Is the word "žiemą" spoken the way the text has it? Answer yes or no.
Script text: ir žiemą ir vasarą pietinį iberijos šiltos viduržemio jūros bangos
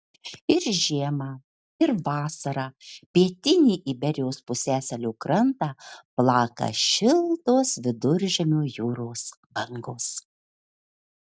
yes